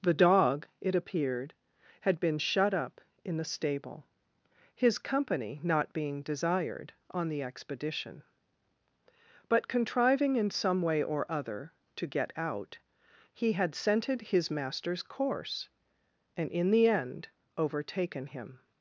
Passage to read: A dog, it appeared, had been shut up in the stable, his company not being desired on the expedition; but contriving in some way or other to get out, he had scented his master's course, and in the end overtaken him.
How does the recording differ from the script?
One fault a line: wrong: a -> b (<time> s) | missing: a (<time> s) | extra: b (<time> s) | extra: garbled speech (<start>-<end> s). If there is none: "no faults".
wrong: A -> The (0.0 s)